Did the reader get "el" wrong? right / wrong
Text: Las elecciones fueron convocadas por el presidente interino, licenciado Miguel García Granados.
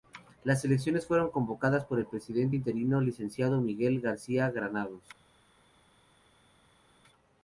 right